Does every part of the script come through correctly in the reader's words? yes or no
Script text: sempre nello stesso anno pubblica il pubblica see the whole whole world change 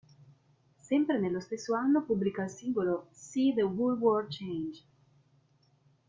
no